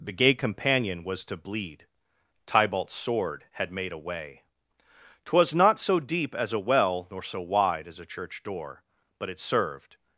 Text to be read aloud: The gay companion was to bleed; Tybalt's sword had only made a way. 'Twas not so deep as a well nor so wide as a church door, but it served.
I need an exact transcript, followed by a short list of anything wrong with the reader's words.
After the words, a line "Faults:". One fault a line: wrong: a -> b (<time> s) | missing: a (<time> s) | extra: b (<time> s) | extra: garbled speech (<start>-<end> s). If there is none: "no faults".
The gay companion was to bleed; Tybalt's sword had made a way. 'Twas not so deep as a well nor so wide as a church door, but it served.
Faults:
missing: only (3.7 s)